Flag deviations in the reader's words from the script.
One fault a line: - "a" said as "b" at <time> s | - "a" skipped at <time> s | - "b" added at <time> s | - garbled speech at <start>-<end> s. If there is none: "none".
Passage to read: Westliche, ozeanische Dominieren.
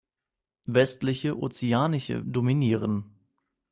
none